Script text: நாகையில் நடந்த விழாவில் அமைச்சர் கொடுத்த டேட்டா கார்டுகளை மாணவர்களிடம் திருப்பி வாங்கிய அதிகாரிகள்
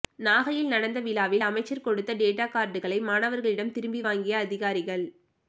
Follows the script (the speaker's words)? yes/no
yes